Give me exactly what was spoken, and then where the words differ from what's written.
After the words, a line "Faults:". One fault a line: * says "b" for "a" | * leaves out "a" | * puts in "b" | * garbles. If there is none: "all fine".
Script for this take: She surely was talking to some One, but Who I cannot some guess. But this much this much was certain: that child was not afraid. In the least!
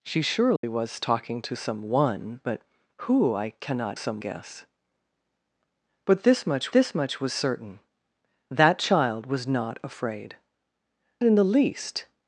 She surely was talking to some One, but Who I cannot some guess. But this much this much was certain: that child was not afraid. In the least!
Faults:
all fine